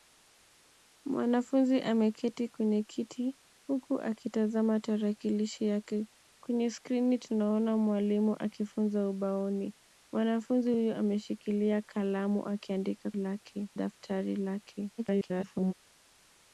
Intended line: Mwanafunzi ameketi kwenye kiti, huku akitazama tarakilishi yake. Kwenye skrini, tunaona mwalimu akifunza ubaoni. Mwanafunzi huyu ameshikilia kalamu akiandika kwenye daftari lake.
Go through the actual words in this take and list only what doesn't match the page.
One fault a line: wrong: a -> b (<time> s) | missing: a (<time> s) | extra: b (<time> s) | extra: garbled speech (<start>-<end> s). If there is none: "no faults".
wrong: kwenye -> lake (13.1 s)
extra: garbled speech (15.0-15.7 s)